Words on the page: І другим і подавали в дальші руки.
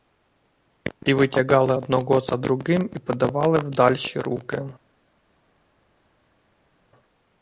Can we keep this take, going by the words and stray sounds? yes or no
no